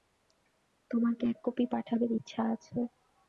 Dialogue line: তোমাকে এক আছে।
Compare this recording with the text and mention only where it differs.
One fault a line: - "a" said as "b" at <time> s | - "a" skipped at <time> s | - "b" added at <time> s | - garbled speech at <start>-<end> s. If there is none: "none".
- "কপি পাঠাবার ইচ্ছা" added at 1.4 s